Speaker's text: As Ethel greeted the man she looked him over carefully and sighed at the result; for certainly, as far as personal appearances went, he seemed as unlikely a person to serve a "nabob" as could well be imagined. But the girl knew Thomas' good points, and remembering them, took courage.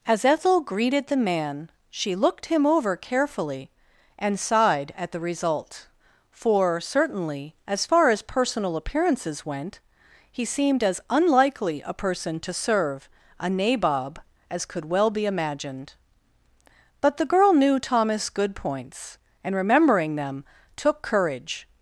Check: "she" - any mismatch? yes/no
no